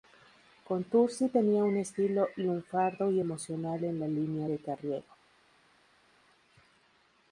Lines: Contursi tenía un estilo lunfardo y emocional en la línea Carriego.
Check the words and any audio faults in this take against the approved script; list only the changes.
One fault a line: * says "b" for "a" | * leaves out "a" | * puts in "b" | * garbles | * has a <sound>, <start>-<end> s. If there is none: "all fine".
* puts in "de"